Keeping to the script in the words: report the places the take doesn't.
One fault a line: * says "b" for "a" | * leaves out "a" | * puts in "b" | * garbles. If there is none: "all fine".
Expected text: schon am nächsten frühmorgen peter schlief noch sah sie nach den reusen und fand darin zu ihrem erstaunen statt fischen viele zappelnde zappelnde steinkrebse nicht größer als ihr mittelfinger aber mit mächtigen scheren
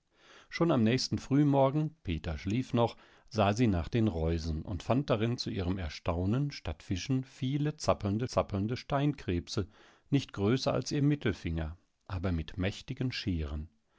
all fine